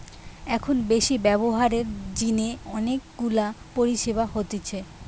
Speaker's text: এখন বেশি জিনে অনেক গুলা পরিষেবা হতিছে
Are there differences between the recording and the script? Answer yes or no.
yes